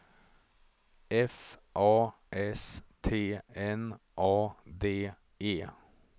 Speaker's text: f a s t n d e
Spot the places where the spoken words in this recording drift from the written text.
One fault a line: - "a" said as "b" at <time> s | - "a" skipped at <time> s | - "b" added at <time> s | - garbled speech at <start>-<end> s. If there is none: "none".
- "a" added at 4.2 s